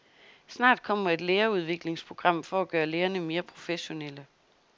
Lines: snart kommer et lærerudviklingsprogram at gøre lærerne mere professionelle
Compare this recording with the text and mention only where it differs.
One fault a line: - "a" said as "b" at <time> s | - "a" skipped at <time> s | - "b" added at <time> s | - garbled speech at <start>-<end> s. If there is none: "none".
- "for" added at 2.4 s